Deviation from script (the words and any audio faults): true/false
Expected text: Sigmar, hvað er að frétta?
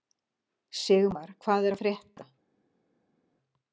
false